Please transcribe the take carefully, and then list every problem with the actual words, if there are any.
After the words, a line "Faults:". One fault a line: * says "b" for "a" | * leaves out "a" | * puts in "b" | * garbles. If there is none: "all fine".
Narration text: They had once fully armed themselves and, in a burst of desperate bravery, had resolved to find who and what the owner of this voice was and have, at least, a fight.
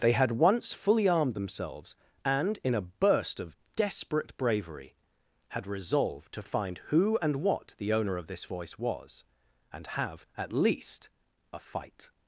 They had once fully armed themselves and, in a burst of desperate bravery, had resolved to find who and what the owner of this voice was and have, at least, a fight.
Faults:
all fine